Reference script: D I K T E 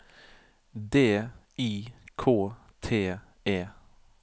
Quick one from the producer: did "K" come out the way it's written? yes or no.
yes